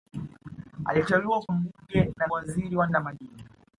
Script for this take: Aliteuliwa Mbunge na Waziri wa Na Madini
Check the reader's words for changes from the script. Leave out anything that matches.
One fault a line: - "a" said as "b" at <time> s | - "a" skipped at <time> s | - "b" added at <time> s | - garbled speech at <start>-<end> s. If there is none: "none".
none